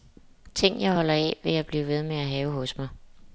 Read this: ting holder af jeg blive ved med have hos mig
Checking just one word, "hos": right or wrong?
right